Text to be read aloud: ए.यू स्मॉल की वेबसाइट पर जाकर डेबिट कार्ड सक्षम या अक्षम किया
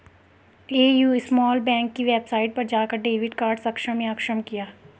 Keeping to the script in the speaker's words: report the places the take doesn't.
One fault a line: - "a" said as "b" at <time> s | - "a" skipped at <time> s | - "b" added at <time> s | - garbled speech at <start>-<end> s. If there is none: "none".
- "बैंक" added at 1.6 s